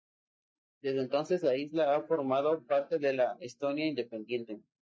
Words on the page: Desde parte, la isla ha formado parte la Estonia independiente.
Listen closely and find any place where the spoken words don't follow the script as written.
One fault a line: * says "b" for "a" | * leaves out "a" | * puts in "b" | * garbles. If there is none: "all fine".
* says "entonces" for "parte"
* puts in "de"